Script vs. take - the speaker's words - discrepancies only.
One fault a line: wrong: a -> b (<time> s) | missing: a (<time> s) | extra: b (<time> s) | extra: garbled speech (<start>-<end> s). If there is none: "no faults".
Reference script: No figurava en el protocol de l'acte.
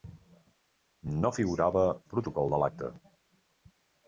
missing: en (1.9 s)